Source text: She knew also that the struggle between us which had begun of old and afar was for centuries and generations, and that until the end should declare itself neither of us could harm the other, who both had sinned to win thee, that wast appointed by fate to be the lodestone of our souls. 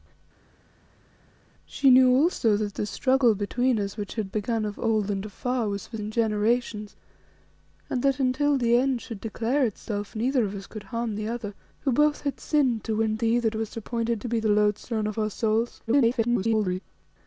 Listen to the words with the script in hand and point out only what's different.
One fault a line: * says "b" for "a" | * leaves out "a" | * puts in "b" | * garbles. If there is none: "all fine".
* leaves out "centuries"
* leaves out "by fate"
* garbles